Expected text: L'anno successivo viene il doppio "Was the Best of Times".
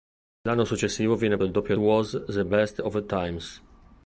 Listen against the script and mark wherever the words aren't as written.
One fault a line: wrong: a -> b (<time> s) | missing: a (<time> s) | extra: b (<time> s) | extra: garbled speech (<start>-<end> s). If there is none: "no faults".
no faults